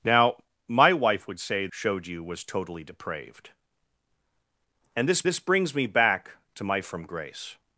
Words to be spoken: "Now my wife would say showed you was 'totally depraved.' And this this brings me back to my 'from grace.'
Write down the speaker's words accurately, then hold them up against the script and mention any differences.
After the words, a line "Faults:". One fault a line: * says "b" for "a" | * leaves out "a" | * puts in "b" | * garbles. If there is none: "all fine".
"Now my wife would say showed you was 'totally depraved.' And this this brings me back to my 'from grace.'
Faults:
all fine